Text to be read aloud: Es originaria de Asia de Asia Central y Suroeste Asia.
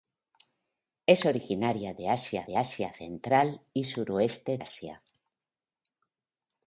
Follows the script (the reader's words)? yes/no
yes